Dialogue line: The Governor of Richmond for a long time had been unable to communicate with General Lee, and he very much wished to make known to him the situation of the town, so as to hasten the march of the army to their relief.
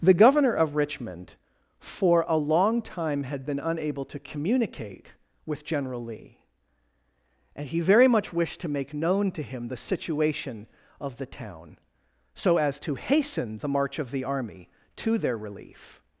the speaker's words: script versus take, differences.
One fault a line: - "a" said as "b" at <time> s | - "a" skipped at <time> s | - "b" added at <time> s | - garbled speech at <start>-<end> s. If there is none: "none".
none